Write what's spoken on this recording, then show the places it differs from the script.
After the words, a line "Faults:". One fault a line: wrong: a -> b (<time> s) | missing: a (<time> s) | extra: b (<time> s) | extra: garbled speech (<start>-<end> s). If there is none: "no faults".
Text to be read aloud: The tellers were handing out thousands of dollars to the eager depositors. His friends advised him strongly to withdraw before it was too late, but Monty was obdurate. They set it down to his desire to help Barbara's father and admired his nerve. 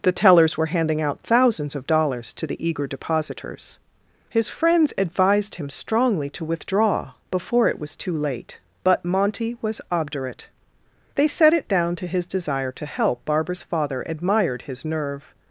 The tellers were handing out thousands of dollars to the eager depositors. His friends advised him strongly to withdraw before it was too late, but Monty was obdurate. They set it down to his desire to help Barbara's father admired his nerve.
Faults:
missing: and (14.0 s)